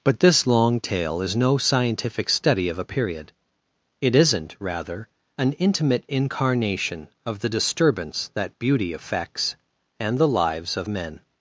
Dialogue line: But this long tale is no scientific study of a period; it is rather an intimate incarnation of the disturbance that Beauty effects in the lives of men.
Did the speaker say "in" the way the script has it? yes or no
no